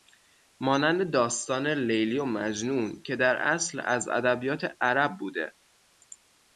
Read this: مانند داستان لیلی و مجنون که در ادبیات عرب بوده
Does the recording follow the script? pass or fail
fail